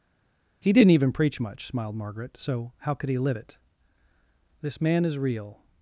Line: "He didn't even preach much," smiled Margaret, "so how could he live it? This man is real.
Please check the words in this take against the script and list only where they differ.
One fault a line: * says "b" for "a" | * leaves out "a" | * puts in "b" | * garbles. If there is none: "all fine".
all fine